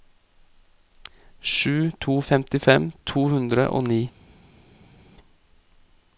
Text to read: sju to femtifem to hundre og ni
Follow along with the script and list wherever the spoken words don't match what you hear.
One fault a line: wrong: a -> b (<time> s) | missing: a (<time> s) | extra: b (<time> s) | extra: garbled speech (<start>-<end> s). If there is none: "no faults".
no faults